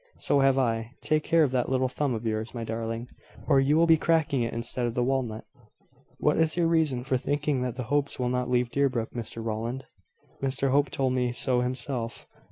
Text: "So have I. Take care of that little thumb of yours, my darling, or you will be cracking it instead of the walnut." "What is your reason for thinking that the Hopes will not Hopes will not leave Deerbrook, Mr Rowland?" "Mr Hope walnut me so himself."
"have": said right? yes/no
yes